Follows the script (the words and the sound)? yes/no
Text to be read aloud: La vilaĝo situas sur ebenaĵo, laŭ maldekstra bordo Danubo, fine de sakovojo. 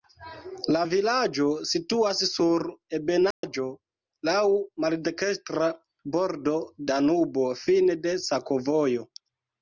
no